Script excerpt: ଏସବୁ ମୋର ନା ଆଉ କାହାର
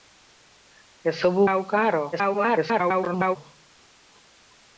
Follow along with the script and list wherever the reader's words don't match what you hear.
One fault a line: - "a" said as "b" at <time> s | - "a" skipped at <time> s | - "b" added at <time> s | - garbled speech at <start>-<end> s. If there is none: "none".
- "ମୋର ନା" skipped at 1.4 s
- garbled speech at 2.1-3.4 s